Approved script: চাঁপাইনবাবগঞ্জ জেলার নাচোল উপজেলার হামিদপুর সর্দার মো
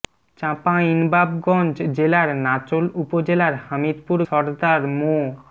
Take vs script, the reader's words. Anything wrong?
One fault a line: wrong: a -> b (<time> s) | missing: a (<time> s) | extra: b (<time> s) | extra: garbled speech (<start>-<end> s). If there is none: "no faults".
no faults